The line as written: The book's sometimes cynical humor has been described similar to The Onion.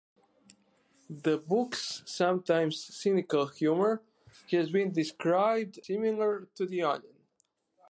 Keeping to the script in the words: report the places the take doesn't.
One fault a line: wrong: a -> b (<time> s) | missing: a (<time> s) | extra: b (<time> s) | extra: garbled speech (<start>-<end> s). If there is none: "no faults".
no faults